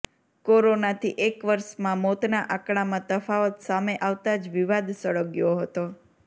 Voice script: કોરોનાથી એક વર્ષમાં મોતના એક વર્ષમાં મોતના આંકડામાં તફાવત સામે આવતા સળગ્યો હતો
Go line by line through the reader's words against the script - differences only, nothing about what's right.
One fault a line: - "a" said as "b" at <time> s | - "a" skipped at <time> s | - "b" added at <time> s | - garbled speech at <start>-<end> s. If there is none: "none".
- "એક વર્ષમાં મોતના" skipped at 2.4 s
- "જ વિવાદ" added at 4.4 s